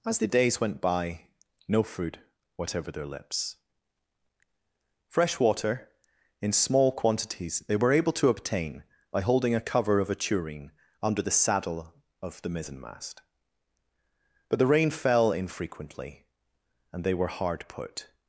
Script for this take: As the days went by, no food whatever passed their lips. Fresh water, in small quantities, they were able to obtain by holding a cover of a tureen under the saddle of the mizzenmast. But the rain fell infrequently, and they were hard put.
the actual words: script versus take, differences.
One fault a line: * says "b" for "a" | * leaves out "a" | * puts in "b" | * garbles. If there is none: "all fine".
* leaves out "passed"